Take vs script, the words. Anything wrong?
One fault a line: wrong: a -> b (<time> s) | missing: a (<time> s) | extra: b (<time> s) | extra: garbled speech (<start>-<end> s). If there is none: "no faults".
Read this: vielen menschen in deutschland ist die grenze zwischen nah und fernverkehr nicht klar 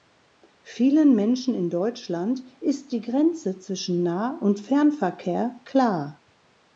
missing: nicht (5.6 s)